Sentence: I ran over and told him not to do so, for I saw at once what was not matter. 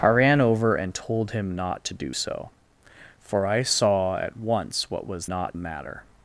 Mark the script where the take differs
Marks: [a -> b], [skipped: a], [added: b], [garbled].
I ran over and told him not to do so, for I saw at once what was not matter.